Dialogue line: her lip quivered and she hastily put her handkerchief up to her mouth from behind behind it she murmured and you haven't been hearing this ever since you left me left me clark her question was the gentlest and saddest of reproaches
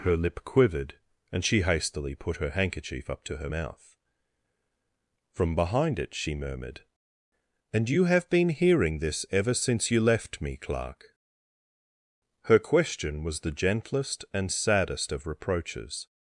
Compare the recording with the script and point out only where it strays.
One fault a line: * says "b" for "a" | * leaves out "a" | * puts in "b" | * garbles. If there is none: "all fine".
* leaves out "behind"
* says "have" for "haven't"
* leaves out "left me"